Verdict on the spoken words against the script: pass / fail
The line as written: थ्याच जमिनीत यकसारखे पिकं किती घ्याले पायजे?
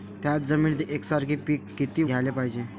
pass